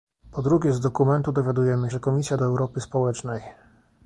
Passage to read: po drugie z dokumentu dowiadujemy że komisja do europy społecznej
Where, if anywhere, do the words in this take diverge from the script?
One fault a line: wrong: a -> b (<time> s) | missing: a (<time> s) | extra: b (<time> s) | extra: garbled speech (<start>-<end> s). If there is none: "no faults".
no faults